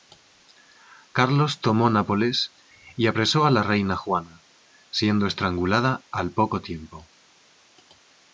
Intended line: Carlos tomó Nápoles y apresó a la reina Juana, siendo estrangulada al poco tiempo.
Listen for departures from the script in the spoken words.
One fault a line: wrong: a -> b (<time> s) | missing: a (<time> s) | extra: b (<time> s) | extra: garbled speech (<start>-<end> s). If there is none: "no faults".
no faults